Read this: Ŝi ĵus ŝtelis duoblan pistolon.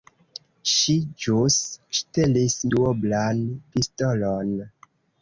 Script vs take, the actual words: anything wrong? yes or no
no